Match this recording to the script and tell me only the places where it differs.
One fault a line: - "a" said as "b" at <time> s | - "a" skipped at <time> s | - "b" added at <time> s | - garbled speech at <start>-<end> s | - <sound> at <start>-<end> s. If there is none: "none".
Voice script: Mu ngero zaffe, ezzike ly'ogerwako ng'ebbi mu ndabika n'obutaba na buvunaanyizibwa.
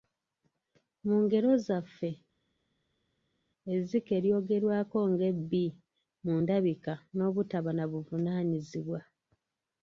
none